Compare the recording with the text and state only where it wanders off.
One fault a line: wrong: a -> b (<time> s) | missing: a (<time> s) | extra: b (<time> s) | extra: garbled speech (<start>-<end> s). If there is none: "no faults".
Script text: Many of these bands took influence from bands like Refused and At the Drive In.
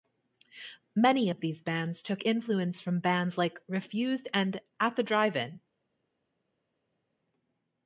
no faults